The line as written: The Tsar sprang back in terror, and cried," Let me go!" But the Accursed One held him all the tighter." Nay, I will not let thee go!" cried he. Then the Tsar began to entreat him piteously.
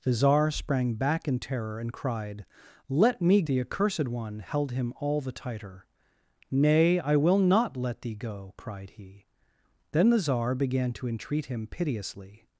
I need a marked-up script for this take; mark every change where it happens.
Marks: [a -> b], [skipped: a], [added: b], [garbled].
The Tsar sprang back in terror, and cried," Let me [skipped: go!" But] the Accursed One held him all the tighter." Nay, I will not let thee go!" cried he. Then the Tsar began to entreat him piteously.